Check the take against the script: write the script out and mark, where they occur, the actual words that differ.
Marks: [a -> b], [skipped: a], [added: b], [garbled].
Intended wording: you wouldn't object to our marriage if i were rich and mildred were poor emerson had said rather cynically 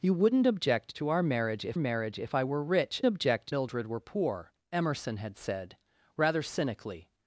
you wouldn't object to our marriage if [added: marriage if] i were rich [and -> object] mildred were poor emerson had said rather cynically